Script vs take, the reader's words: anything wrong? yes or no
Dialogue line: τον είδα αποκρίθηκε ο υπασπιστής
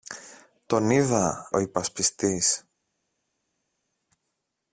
yes